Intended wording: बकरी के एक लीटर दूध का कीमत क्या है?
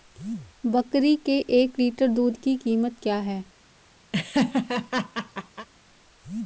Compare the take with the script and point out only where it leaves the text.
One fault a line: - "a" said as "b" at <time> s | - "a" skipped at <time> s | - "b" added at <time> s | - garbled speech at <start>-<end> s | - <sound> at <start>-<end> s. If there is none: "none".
- "का" said as "की" at 2.4 s
- laugh at 4.1-5.7 s